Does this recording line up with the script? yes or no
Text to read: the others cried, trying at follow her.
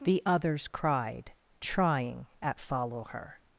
yes